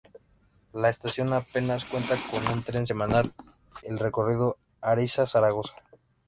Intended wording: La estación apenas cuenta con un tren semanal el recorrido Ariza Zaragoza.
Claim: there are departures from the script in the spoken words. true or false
false